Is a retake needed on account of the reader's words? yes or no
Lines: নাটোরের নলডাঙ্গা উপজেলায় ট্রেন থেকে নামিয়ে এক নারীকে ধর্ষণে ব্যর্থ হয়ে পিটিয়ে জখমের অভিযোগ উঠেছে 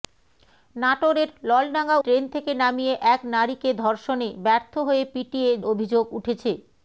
yes